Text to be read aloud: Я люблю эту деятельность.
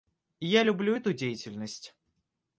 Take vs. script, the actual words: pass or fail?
pass